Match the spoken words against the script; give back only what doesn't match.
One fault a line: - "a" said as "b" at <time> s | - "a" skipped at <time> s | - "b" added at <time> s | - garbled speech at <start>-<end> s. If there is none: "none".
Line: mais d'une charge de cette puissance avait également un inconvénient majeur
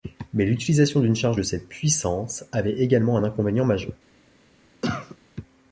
- "l'utilisation" added at 0.5 s